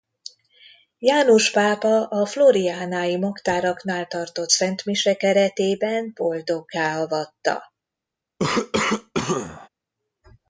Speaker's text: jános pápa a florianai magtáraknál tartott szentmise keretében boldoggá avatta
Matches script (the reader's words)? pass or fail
pass